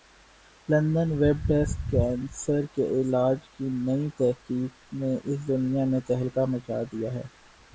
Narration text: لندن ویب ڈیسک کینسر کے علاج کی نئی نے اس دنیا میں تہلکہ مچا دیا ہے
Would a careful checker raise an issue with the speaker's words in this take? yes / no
yes